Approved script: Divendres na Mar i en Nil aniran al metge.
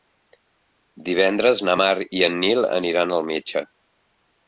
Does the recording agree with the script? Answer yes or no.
yes